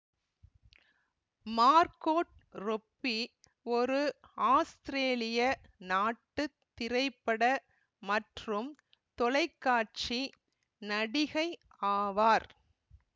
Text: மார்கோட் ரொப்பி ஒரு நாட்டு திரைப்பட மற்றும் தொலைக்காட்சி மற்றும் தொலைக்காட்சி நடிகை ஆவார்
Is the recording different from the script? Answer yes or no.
yes